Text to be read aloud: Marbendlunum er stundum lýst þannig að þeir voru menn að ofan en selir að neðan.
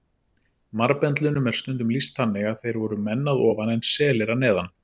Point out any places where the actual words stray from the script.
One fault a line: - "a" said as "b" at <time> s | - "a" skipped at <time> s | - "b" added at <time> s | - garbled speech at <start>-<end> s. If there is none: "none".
none